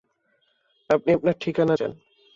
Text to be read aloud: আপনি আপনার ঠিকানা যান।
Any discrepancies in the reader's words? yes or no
no